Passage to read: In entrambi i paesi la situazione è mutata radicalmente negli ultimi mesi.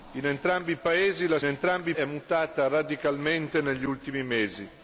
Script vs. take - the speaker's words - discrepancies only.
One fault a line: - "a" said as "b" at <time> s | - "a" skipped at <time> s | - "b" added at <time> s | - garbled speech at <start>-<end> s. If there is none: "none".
- "situazione" said as "entrambi" at 1.4 s